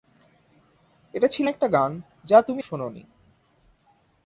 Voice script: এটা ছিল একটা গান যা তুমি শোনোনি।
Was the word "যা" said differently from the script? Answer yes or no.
no